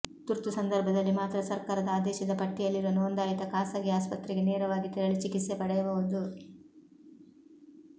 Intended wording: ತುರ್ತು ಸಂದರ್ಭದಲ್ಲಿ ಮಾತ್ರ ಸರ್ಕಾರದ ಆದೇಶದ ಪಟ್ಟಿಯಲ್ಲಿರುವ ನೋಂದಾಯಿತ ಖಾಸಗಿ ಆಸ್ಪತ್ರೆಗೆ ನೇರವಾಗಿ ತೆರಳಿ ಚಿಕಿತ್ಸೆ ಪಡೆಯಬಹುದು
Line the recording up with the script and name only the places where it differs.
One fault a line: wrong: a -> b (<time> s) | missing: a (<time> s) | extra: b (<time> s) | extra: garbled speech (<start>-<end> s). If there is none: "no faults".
no faults